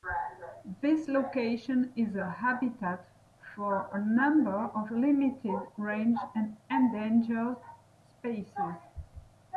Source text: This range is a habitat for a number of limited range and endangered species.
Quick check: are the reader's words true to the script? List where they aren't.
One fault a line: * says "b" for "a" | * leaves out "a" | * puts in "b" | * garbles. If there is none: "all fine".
* says "location" for "range"